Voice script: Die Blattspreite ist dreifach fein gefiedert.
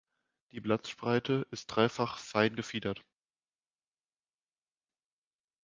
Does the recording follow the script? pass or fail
pass